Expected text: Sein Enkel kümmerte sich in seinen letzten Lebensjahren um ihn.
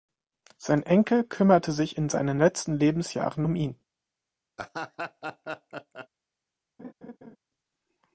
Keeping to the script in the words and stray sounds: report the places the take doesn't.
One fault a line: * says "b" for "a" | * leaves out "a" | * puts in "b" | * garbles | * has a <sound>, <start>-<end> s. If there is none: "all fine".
* has a laugh, 4.6-6.1 s
* has a laugh, 6.8-7.4 s